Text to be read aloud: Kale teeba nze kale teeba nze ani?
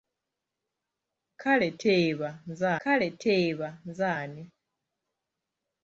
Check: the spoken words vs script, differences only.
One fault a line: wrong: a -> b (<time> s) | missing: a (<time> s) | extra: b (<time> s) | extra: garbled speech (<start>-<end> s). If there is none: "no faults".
no faults